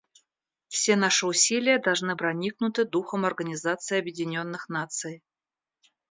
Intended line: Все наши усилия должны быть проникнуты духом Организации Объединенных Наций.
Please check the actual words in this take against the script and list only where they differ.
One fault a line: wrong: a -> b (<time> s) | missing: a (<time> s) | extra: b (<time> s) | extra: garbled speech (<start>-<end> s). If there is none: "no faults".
missing: быть (2.1 s)